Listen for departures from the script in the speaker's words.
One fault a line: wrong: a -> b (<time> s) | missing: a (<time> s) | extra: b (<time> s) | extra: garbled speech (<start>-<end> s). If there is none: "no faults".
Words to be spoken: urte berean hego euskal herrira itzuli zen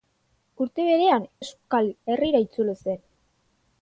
missing: hego (1.3 s)